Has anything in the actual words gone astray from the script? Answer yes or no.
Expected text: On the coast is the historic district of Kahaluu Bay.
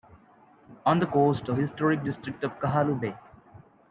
yes